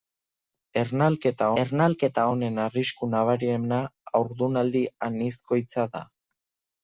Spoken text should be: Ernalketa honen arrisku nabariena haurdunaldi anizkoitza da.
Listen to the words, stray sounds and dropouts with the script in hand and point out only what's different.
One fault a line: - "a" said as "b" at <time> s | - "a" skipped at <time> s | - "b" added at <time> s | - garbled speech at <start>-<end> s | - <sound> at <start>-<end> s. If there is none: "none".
- "ernalketa" added at 1.6 s